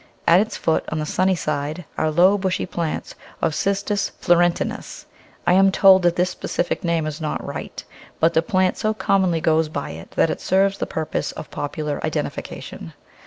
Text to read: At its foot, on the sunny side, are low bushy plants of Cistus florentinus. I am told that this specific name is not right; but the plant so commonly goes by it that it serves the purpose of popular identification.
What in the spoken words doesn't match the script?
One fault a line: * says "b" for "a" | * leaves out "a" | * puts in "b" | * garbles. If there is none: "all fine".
all fine